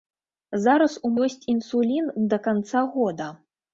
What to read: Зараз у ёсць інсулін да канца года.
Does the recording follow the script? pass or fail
pass